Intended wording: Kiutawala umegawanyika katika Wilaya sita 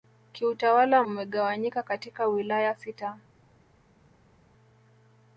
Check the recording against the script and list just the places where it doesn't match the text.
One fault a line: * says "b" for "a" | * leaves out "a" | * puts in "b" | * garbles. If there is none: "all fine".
all fine